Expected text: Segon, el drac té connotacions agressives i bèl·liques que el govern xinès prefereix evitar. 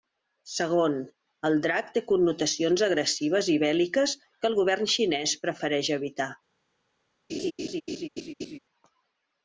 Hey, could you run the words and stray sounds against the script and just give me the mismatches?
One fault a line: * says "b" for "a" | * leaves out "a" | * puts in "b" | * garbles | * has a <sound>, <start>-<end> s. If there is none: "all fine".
* has a laugh, 7.3-8.6 s